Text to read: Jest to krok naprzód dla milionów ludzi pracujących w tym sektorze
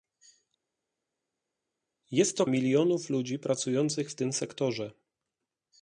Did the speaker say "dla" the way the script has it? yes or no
no